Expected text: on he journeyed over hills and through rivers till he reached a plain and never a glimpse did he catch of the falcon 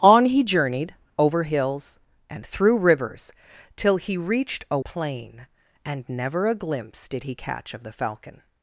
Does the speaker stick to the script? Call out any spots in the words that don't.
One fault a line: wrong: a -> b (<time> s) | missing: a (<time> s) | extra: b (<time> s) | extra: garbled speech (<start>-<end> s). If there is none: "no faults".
no faults